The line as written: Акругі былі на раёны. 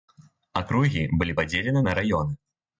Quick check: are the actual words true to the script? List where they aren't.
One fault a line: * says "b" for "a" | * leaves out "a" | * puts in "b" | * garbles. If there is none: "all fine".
* puts in "падзелены"